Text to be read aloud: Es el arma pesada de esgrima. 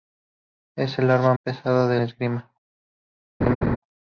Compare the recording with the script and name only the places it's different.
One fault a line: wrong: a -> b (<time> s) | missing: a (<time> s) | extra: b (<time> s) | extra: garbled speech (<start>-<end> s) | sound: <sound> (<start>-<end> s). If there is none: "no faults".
sound: laugh (3.4-3.8 s)